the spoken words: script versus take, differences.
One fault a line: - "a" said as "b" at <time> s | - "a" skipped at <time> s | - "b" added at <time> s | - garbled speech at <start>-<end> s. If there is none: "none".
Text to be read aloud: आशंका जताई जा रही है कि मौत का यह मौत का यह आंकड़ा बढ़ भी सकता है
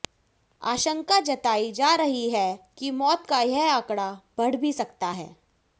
- "मौत का यह" skipped at 3.7 s